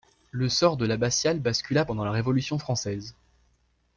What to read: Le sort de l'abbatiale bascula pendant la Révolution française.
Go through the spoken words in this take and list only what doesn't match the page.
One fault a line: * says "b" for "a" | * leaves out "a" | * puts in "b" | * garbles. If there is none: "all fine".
all fine